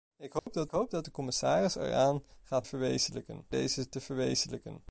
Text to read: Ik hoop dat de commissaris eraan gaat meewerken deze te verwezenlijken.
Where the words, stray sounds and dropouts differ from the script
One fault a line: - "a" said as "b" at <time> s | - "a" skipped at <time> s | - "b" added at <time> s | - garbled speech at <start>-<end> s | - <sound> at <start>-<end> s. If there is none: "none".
- dropout at 0.4-0.5 s
- "hoop dat" added at 0.7 s
- "meewerken" said as "verwezenlijken" at 2.6 s